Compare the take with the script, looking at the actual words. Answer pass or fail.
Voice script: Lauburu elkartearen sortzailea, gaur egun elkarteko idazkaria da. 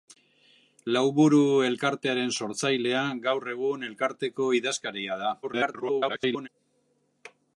fail